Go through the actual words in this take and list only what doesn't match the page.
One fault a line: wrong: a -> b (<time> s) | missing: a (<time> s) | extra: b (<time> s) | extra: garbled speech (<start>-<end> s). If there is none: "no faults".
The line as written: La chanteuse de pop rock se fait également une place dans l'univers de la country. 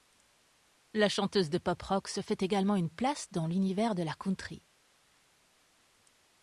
no faults